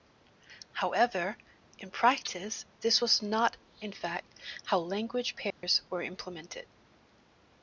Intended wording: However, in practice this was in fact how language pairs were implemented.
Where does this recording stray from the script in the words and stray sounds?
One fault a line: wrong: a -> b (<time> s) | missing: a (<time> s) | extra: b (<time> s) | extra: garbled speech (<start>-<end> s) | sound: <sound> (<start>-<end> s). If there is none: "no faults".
extra: not (3.2 s)
sound: dropout (5.5-5.6 s)